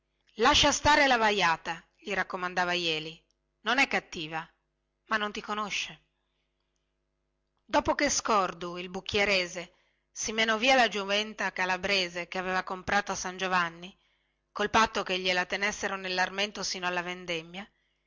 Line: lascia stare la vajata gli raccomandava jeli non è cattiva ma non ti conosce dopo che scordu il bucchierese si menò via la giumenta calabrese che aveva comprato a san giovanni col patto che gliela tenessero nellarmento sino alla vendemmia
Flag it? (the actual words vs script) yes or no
no